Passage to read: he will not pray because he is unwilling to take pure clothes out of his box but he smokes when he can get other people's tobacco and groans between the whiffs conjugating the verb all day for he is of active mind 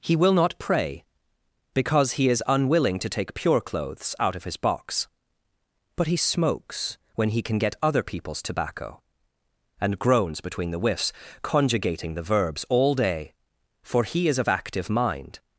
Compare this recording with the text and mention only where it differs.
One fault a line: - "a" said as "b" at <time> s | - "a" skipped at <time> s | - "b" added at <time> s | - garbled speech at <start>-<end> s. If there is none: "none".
- "verb" said as "verbs" at 12.2 s